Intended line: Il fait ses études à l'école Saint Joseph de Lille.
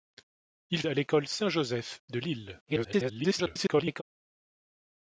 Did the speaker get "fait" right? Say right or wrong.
wrong